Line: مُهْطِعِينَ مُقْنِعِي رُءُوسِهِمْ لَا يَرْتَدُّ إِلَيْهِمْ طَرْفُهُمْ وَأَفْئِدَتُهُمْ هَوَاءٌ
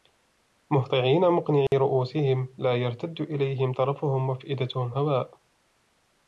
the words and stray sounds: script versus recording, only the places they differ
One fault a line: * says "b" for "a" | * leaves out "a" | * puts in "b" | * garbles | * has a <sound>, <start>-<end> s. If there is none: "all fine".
* has a dropout, 1.7-1.7 s